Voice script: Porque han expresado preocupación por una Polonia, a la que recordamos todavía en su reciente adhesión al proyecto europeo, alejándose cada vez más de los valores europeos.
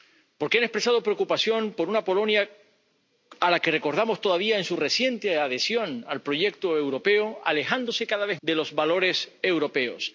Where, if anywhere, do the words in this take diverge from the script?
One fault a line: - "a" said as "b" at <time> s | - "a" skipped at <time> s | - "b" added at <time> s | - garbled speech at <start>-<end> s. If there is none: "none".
- "más" skipped at 8.4 s